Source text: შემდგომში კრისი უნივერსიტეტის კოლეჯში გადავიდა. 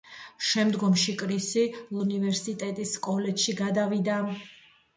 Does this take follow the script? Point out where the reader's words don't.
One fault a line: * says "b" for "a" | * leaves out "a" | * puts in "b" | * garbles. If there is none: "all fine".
all fine